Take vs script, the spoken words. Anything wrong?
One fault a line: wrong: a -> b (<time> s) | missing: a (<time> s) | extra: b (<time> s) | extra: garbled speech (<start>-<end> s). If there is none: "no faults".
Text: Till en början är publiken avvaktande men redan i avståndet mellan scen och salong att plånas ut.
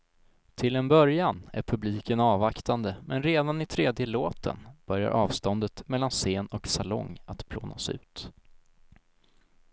extra: tredje låten börjar (3.6 s)